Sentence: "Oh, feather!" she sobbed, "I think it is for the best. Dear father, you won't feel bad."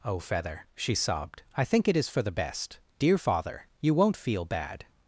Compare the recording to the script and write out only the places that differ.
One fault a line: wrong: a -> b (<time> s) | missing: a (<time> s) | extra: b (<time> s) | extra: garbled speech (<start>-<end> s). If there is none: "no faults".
no faults